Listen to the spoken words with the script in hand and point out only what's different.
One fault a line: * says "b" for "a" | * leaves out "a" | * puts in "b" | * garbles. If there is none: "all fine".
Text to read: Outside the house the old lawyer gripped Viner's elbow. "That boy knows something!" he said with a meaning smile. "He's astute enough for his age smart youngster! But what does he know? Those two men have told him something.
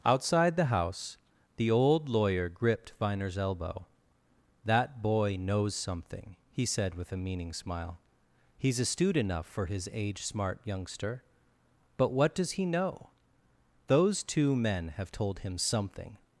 all fine